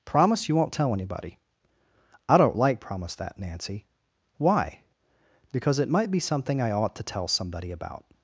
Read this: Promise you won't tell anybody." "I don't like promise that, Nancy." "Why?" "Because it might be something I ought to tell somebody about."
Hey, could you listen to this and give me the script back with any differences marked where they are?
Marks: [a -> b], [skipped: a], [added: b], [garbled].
Promise you won't tell anybody." "I don't like promise that, Nancy." "Why?" "Because it might be something I ought to tell somebody about."